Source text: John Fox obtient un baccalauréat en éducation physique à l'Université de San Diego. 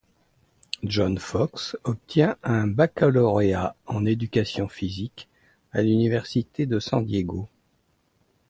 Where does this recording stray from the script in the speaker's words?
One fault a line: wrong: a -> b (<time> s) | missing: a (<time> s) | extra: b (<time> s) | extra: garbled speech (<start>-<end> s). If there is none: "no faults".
no faults